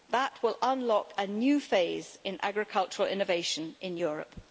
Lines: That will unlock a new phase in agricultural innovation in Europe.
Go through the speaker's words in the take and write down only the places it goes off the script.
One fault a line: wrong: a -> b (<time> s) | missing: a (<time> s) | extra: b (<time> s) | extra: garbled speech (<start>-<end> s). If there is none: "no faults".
no faults